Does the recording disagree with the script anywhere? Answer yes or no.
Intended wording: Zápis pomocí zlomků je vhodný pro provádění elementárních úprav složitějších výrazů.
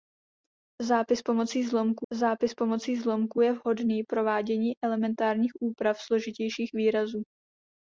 yes